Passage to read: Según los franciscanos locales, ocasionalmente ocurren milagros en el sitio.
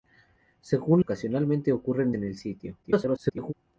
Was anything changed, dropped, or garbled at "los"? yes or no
yes